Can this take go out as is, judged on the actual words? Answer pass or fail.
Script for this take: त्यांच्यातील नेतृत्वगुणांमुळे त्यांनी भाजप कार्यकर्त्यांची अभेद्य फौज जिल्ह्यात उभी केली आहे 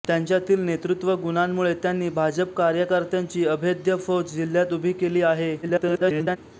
fail